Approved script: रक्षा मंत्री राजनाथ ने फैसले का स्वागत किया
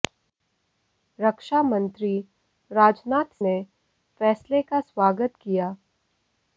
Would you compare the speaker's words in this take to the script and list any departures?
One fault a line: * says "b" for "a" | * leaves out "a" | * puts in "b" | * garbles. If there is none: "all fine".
all fine